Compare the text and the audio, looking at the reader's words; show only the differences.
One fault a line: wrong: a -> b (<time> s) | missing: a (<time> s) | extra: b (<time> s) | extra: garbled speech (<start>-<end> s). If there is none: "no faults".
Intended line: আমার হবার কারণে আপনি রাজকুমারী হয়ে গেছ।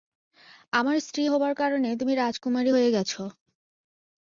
extra: স্ত্রী (1.0 s)
wrong: আপনি -> তুমি (2.0 s)